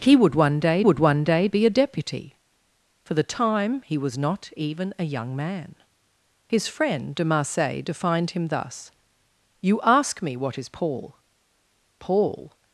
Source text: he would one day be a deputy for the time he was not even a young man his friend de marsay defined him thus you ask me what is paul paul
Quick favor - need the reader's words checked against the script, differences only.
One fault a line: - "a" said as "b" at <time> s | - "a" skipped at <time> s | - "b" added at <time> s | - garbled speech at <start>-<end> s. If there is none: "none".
- "would one day" added at 0.8 s